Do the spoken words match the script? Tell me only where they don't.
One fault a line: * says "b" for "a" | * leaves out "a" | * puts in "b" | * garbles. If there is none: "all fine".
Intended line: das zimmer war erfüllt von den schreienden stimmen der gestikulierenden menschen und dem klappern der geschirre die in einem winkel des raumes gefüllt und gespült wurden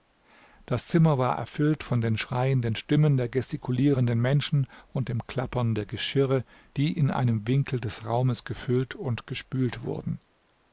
all fine